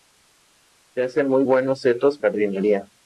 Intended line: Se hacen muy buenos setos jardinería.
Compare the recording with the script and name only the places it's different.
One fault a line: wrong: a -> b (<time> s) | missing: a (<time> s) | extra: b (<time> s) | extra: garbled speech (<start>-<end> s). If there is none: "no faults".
no faults